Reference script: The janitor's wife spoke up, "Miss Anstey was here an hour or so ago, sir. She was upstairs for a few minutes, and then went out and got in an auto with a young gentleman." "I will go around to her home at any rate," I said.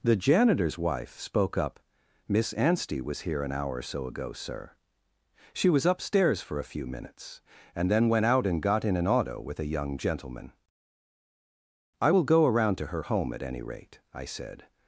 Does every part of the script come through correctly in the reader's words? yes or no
yes